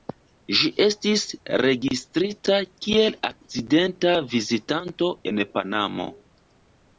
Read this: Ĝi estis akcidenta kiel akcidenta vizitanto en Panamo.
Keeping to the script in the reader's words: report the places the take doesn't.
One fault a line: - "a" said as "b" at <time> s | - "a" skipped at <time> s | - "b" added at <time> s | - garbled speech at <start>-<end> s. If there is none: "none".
- "akcidenta" said as "registrita" at 1.6 s